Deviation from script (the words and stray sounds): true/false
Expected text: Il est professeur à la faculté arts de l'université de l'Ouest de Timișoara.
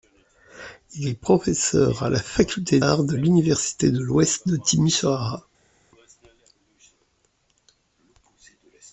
false